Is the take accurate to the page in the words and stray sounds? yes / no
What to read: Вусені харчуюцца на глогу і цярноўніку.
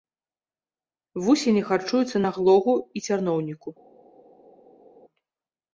yes